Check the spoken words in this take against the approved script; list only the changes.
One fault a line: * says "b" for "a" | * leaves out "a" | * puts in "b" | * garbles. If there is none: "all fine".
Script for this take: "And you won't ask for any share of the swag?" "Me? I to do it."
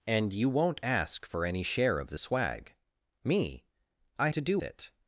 all fine